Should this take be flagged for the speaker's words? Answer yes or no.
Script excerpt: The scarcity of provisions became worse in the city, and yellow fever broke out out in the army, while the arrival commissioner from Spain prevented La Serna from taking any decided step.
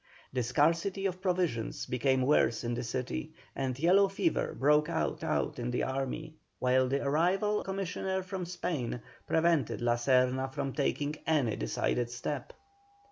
no